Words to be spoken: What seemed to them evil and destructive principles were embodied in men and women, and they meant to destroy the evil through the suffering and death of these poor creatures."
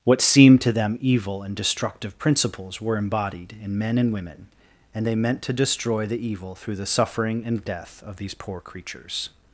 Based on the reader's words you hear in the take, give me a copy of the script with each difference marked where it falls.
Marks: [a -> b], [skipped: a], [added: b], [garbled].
What seemed to them evil and destructive principles were embodied in men and women, and they meant to destroy the evil through the suffering and death of these poor creatures."